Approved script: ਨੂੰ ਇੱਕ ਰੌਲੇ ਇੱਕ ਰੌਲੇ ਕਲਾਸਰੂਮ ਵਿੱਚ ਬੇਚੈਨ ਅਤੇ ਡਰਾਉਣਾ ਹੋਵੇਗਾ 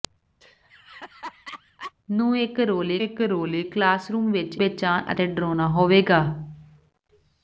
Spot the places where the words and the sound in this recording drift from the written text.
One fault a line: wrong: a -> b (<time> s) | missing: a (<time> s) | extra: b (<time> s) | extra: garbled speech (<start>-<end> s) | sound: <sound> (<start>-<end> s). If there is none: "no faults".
sound: laugh (0.4-1.9 s)